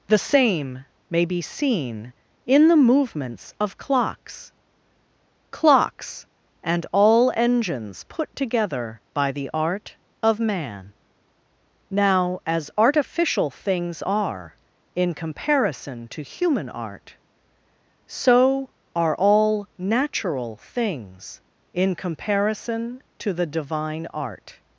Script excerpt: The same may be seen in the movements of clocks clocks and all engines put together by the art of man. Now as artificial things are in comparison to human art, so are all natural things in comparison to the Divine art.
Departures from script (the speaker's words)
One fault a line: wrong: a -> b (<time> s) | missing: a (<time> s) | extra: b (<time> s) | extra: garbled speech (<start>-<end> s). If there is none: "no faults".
no faults